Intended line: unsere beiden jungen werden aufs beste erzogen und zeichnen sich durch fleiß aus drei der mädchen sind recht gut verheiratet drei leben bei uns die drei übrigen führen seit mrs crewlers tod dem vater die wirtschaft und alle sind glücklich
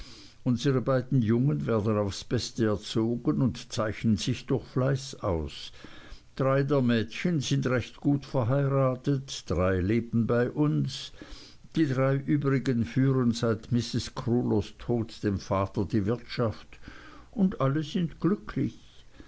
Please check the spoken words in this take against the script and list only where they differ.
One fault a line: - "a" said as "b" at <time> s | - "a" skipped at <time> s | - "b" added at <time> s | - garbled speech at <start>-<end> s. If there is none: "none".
none